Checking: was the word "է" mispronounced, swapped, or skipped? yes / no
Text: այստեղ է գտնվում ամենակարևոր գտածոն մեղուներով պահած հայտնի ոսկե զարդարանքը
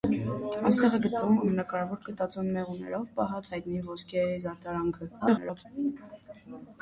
no